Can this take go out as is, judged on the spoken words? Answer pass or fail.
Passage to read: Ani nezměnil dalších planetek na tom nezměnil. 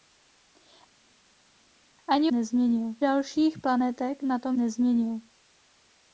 pass